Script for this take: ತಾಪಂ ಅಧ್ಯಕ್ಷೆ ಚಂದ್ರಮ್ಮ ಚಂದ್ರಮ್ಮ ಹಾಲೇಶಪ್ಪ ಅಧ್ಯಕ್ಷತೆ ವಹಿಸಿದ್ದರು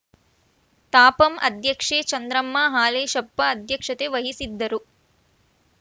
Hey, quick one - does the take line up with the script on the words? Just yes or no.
no